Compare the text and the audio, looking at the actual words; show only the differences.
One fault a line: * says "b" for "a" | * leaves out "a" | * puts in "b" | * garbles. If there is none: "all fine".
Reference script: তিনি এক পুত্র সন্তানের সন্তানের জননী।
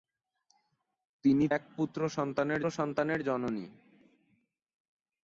all fine